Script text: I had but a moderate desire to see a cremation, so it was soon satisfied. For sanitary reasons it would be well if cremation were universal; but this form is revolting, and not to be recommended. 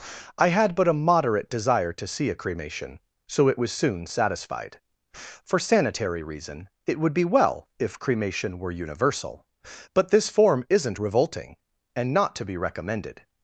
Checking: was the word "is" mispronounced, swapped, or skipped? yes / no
yes